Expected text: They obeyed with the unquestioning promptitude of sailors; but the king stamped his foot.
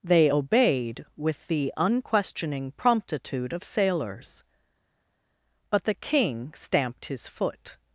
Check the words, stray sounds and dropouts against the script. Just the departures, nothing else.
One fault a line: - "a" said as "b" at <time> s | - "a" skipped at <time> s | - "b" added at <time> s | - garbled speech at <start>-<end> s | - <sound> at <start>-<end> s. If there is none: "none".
none